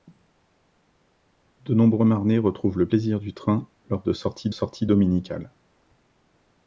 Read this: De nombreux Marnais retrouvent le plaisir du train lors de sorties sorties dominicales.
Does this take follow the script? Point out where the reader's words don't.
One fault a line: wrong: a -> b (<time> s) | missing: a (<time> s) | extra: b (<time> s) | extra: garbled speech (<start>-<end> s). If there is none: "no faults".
no faults